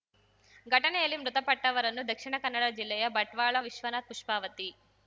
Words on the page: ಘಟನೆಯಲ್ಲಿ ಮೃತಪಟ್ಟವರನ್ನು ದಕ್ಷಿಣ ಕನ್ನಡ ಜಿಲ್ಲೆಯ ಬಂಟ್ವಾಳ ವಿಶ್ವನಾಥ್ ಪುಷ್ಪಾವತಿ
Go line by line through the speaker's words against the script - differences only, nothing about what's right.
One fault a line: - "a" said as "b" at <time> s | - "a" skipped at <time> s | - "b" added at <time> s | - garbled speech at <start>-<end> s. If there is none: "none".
none